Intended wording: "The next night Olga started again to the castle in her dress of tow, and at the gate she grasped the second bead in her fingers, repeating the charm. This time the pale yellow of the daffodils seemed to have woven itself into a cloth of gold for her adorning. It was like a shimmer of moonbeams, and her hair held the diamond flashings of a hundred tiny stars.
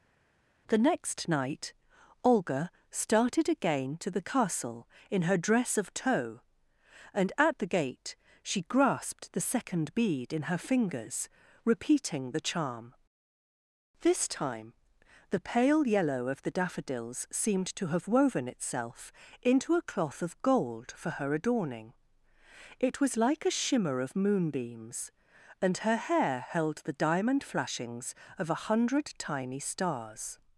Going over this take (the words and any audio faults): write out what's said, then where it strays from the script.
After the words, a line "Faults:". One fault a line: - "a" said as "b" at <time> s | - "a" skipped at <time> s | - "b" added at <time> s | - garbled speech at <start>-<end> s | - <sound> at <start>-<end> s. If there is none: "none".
"The next night Olga started again to the castle in her dress of tow, and at the gate she grasped the second bead in her fingers, repeating the charm. This time the pale yellow of the daffodils seemed to have woven itself into a cloth of gold for her adorning. It was like a shimmer of moonbeams, and her hair held the diamond flashings of a hundred tiny stars.
Faults:
none